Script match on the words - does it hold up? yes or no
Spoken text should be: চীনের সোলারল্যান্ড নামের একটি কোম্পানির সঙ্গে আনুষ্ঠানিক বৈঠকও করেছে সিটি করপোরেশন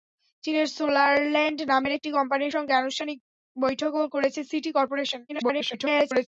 no